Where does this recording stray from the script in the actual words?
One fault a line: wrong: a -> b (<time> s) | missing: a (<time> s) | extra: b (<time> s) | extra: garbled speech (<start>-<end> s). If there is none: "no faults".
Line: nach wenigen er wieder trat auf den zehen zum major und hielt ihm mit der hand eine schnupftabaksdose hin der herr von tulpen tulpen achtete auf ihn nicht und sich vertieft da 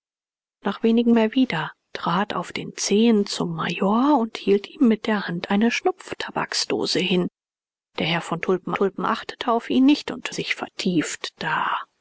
no faults